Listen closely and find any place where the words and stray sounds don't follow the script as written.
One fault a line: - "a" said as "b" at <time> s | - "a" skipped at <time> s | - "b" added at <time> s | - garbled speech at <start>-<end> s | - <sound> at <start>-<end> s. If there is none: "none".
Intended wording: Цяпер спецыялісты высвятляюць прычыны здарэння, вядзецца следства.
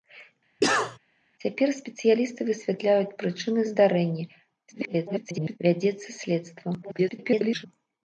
- cough at 0.6-1.0 s
- garbled speech at 4.7-5.6 s
- garbled speech at 6.8-7.7 s